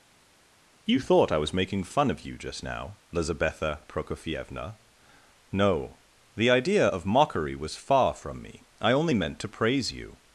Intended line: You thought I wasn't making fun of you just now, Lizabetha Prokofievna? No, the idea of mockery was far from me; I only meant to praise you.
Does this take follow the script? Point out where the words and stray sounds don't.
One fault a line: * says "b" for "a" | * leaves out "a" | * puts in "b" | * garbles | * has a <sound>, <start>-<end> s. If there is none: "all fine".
* says "was" for "wasn't"